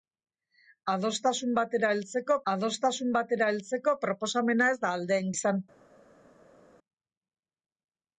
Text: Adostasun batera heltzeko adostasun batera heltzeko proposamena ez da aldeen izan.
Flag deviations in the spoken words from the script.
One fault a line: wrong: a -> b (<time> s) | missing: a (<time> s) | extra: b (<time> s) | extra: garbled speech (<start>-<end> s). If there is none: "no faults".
no faults